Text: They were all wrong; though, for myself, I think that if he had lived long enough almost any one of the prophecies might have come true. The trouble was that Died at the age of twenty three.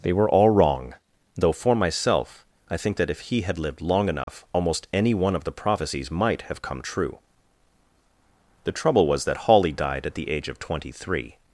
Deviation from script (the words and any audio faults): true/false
true